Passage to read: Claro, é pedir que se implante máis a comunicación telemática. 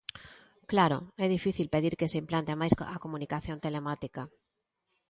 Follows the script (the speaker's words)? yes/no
no